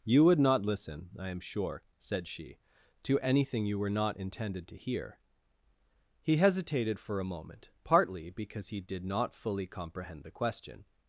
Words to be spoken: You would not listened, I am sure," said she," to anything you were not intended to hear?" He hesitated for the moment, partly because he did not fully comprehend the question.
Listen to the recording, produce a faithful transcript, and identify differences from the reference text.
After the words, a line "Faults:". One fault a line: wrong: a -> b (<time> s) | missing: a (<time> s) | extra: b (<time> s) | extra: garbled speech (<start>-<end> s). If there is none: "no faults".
You would not listen, I am sure," said she," to anything you were not intended to hear?" He hesitated for a moment, partly because he did not fully comprehend the question.
Faults:
wrong: listened -> listen (0.7 s)
wrong: the -> a (7.2 s)